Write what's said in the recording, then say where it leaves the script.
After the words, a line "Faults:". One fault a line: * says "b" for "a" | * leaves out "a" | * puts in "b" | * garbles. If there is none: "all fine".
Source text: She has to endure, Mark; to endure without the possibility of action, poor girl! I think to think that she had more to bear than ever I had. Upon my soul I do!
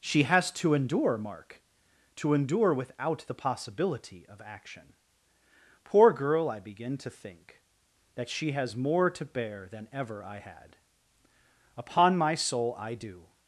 She has to endure, Mark; to endure without the possibility of action, poor girl! I begin to think that she has more to bear than ever I had. Upon my soul I do!
Faults:
* says "begin" for "think"
* says "has" for "had"